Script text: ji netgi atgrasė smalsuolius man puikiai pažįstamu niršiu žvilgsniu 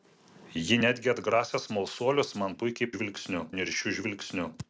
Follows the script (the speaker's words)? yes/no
no